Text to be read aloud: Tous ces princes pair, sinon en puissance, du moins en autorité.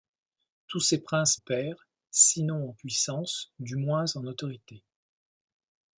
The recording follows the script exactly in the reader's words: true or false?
true